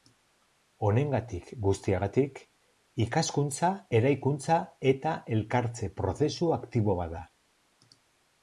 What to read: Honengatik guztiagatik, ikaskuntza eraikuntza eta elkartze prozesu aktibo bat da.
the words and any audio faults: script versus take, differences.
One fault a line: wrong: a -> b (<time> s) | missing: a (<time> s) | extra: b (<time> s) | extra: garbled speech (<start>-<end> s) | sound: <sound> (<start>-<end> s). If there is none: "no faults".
no faults